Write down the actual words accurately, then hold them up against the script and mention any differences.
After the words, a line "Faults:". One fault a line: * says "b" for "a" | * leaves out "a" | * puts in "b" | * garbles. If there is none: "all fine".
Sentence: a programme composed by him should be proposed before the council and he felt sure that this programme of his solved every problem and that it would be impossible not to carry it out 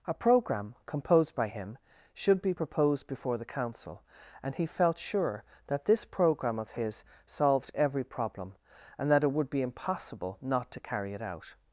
a programme composed by him should be proposed before the council and he felt sure that this programme of his solved every problem and that it would be impossible not to carry it out
Faults:
all fine